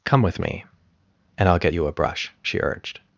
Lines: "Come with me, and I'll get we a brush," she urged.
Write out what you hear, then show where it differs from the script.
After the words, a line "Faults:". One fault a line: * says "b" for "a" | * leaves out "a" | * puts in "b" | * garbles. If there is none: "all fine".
"Come with me, and I'll get you a brush," she urged.
Faults:
* says "you" for "we"